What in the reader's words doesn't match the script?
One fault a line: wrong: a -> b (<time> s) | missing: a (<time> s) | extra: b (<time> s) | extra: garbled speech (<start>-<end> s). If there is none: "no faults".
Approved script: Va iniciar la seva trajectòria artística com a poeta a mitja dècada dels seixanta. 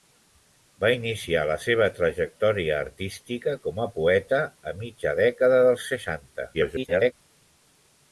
extra: garbled speech (6.5-7.1 s)